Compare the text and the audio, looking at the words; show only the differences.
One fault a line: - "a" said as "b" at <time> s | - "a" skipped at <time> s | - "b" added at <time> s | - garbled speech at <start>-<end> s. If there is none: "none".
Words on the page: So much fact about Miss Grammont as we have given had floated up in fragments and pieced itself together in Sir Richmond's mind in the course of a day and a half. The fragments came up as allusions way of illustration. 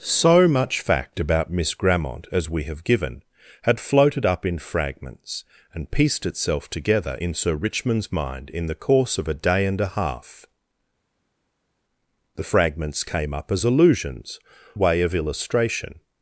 none